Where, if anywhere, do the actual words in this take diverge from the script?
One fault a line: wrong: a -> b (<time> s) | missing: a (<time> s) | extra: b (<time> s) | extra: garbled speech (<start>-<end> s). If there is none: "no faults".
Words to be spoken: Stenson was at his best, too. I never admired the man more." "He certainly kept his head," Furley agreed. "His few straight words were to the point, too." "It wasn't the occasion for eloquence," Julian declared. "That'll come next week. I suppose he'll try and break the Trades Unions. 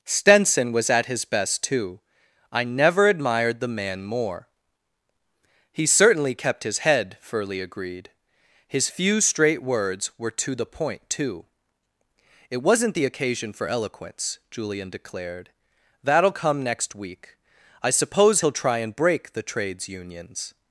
no faults